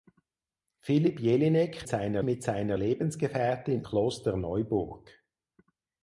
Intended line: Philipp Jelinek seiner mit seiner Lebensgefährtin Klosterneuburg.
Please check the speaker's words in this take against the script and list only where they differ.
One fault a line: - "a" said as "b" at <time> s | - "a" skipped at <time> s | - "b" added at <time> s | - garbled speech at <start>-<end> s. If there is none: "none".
none